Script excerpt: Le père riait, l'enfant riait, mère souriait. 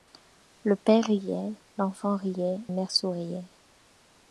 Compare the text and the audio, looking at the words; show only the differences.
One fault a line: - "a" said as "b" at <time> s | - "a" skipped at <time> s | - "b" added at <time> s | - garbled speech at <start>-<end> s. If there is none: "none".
none